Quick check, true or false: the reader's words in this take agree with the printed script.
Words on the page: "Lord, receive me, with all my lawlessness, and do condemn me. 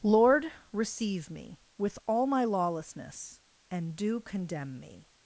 true